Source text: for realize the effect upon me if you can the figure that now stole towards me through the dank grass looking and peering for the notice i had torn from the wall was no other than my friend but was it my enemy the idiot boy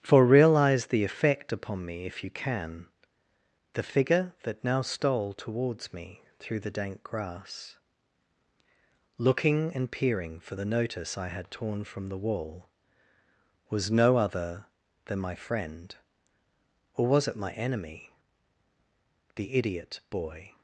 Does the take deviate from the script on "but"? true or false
true